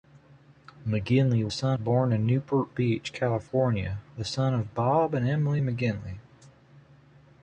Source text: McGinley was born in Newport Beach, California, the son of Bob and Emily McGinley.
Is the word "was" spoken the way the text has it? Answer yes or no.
no